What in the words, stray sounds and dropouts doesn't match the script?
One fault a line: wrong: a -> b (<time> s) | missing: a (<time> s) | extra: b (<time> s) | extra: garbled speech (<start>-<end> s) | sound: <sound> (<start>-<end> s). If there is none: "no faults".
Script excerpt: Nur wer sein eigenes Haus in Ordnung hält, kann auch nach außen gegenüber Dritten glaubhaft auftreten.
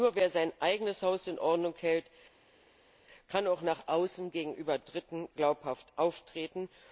no faults